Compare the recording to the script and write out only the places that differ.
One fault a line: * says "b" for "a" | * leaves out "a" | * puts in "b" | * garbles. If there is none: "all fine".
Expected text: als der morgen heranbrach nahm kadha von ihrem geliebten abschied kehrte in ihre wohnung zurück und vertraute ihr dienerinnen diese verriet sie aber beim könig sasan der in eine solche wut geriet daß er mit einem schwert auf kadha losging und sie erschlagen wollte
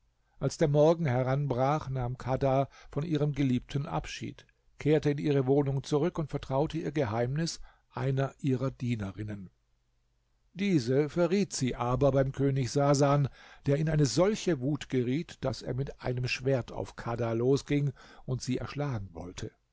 * puts in "geheimnis einer ihrer"